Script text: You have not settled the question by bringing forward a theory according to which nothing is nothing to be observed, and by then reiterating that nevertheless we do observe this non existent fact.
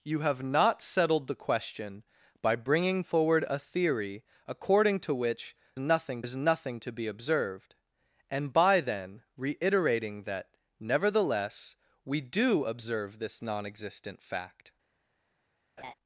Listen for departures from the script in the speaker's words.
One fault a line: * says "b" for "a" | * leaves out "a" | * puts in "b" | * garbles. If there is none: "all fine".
all fine